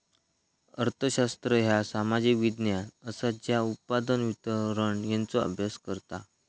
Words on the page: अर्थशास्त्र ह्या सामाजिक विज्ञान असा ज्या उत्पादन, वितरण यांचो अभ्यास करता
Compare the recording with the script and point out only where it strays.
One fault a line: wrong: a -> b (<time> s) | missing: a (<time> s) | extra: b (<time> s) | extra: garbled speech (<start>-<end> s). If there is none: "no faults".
no faults